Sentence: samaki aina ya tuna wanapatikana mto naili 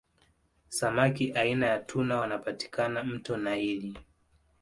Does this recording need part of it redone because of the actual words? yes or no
no